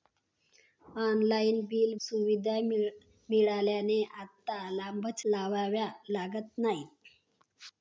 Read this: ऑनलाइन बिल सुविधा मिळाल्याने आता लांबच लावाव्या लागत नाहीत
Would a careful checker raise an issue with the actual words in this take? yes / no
no